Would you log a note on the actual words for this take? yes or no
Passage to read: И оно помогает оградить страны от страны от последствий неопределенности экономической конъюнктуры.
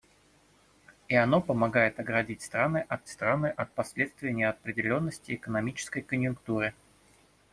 no